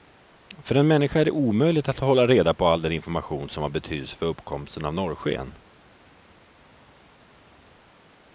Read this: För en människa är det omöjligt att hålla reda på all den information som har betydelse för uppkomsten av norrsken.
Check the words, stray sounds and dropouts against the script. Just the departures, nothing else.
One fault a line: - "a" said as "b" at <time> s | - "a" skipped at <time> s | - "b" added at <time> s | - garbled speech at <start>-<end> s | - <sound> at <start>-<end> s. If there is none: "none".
none